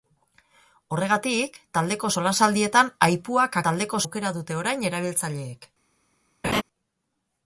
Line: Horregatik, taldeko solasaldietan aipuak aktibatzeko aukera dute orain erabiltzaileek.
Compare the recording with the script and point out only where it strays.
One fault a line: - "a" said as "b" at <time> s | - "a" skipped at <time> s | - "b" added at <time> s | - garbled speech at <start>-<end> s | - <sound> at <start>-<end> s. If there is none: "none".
- "aktibatzeko" said as "taldeko" at 3.7 s
- laugh at 6.4-6.6 s